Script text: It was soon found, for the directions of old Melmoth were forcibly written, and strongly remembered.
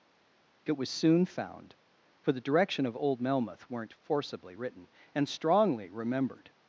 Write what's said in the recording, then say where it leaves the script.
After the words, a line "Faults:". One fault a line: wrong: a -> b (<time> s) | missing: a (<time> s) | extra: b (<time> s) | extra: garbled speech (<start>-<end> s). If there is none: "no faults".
It was soon found, for the direction of old Melmoth weren't forcibly written, and strongly remembered.
Faults:
wrong: directions -> direction (2.4 s)
wrong: were -> weren't (3.7 s)